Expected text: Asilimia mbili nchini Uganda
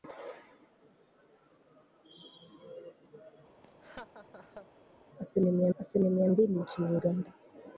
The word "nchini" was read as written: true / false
true